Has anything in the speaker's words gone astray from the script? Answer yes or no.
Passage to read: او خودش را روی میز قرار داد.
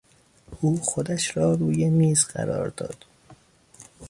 no